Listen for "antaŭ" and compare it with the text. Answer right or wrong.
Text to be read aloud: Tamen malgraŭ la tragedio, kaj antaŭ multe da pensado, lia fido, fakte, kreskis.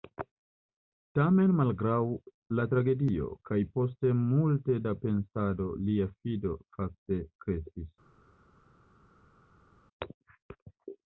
wrong